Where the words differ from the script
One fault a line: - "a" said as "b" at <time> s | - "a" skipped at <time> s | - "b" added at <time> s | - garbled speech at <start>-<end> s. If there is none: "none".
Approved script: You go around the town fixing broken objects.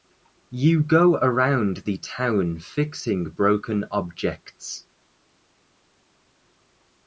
none